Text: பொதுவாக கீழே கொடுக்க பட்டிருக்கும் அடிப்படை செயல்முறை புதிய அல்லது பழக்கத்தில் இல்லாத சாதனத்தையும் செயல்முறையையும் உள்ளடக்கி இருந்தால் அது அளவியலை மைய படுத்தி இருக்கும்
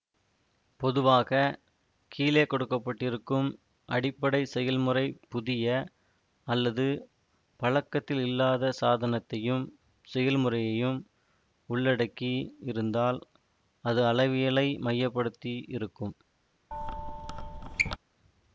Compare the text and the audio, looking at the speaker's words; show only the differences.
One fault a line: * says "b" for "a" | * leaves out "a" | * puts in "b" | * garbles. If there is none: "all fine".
all fine